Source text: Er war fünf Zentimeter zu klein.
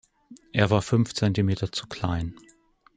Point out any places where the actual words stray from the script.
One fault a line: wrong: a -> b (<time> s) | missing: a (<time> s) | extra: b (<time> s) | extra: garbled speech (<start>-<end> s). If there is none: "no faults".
no faults